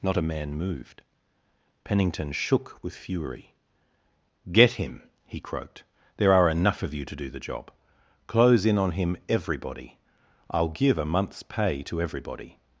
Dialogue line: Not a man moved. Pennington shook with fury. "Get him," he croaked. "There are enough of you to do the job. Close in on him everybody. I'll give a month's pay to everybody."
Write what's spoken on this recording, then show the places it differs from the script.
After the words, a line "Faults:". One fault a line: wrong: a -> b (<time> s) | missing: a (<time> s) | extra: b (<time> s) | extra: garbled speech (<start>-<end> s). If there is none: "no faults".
Not a man moved. Pennington shook with fury. "Get him," he croaked. "There are enough of you to do the job. Close in on him everybody. I'll give a month's pay to everybody."
Faults:
no faults